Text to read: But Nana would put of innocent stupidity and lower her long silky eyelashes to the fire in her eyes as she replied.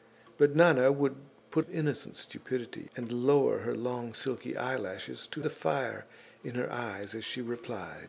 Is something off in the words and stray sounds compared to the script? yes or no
no